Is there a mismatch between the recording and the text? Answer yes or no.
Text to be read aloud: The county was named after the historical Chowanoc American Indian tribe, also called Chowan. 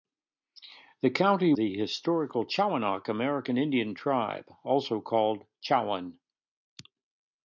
yes